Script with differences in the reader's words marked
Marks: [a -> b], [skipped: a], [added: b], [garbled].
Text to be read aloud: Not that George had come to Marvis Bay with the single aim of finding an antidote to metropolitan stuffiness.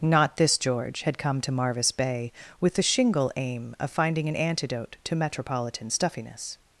Not [that -> this] George had come to Marvis Bay with the [single -> shingle] aim of finding an antidote to metropolitan stuffiness.